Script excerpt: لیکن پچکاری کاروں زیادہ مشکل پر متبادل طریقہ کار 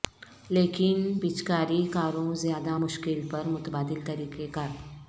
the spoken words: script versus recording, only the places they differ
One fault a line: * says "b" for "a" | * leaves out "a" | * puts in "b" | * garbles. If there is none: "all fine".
all fine